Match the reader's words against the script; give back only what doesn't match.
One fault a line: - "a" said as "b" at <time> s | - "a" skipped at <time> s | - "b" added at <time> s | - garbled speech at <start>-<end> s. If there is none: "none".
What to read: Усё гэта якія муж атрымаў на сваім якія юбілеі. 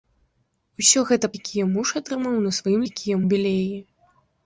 none